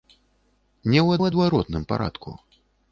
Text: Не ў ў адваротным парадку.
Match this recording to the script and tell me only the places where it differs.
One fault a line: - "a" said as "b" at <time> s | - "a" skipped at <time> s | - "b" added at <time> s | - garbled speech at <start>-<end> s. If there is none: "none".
none